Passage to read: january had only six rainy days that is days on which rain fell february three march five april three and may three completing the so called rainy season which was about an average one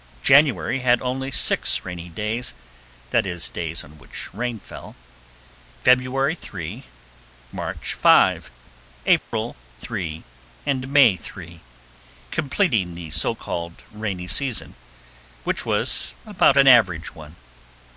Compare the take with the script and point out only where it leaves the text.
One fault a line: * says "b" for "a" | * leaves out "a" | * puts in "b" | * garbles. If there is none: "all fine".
all fine